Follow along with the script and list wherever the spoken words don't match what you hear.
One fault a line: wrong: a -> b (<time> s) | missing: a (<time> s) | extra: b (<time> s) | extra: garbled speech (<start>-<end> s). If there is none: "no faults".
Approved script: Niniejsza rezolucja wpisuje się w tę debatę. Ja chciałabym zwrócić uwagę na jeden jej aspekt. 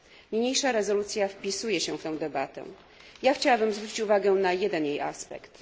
no faults